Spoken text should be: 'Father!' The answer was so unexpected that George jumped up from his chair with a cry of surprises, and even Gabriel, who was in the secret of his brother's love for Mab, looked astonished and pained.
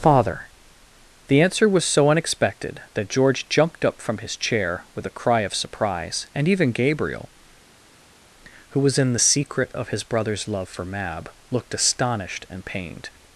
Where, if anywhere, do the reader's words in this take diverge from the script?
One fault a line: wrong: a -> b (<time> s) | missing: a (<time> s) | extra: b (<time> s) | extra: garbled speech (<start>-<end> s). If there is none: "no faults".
wrong: surprises -> surprise (5.5 s)